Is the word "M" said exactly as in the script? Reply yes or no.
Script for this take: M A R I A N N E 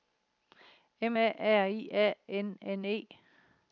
yes